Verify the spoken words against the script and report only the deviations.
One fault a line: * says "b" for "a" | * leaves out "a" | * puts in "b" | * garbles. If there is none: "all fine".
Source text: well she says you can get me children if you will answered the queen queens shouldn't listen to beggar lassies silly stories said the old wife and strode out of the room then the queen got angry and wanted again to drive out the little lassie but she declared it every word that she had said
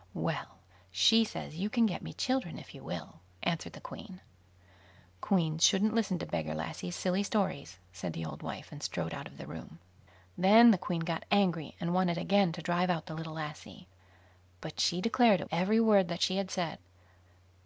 all fine